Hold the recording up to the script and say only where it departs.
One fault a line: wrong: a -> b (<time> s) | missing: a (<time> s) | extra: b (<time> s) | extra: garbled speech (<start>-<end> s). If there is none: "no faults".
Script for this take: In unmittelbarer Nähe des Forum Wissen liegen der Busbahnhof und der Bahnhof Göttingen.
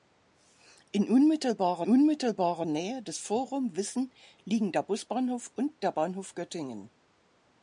extra: unmittelbarer (1.9 s)